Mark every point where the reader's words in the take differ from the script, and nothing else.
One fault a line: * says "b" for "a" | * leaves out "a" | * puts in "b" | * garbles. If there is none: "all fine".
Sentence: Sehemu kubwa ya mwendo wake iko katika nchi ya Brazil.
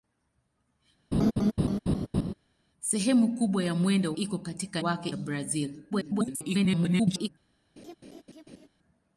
* leaves out "wake"
* says "wake" for "nchi"
* garbles